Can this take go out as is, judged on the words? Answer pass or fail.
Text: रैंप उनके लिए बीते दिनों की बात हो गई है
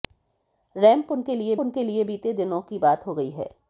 fail